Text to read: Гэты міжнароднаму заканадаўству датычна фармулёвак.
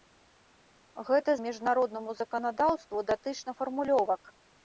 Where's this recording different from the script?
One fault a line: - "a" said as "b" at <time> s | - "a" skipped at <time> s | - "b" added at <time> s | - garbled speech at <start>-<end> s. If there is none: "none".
none